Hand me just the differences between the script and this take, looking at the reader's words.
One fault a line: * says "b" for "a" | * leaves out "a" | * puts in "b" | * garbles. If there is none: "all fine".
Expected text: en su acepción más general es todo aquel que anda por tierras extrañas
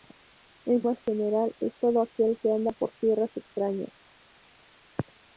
* leaves out "su acepción"